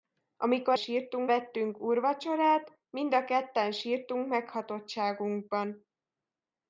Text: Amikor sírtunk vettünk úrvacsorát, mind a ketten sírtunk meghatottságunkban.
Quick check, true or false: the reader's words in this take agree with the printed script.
true